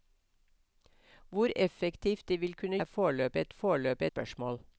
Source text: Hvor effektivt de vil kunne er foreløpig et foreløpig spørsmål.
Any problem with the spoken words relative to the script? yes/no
no